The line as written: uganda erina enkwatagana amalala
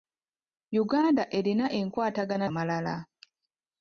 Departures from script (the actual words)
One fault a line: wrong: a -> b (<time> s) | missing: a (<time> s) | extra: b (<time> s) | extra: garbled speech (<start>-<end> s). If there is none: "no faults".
no faults